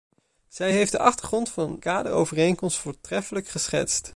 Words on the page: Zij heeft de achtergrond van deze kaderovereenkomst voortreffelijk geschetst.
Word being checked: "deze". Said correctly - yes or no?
no